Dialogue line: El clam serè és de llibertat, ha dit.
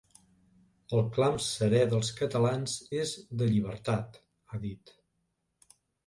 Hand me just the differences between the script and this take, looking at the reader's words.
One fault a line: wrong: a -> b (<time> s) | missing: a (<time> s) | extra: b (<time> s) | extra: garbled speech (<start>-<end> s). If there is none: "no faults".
extra: dels catalans (1.9 s)